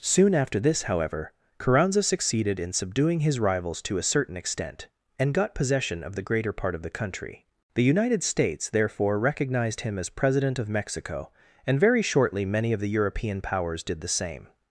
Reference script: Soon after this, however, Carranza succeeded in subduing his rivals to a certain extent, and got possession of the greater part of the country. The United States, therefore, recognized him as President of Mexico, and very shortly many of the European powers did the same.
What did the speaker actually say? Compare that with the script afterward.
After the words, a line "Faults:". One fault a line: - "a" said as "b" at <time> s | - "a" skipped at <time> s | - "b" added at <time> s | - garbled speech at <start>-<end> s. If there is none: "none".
Soon after this, however, Carranza succeeded in subduing his rivals to a certain extent, and got possession of the greater part of the country. The United States, therefore, recognized him as President of Mexico, and very shortly many of the European powers did the same.
Faults:
none